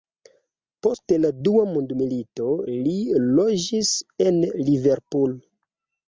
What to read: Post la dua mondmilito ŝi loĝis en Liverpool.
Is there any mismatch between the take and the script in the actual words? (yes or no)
yes